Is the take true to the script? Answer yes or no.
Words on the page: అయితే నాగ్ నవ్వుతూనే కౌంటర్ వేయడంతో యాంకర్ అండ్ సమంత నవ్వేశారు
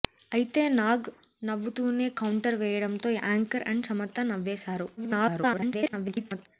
no